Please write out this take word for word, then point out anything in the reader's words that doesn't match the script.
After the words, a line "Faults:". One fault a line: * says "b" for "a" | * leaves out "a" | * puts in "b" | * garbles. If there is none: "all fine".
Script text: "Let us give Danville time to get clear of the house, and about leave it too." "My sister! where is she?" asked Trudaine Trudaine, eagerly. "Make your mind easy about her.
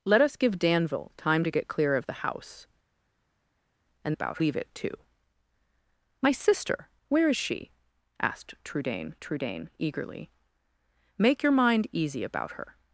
"Let us give Danville time to get clear of the house, and about leave it too." "My sister! where is she?" asked Trudaine Trudaine, eagerly. "Make your mind easy about her.
Faults:
all fine